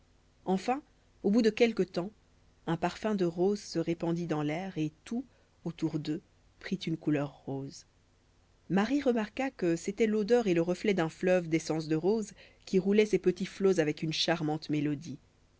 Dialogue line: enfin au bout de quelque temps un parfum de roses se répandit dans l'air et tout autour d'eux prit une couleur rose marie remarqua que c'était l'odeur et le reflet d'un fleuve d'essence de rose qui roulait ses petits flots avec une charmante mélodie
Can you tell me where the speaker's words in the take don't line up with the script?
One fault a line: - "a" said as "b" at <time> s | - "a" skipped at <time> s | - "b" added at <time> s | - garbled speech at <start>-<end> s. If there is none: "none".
none